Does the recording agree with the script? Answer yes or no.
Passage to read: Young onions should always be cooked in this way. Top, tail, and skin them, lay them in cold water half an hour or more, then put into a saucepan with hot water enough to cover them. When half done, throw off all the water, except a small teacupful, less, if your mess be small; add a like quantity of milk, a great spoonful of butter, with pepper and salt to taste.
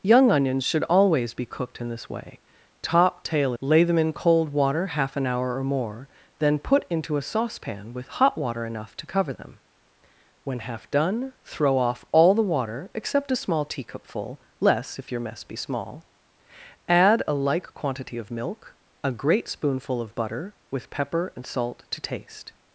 no